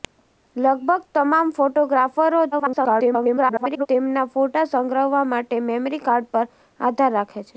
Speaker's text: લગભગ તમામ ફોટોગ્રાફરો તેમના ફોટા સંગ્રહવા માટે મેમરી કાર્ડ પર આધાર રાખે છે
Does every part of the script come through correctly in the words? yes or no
no